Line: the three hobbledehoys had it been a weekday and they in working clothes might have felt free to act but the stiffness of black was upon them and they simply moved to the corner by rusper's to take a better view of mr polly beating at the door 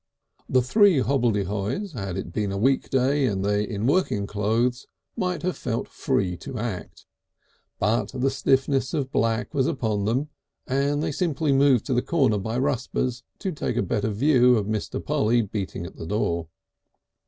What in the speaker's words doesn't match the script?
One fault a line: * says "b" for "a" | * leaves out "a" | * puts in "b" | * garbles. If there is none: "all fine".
all fine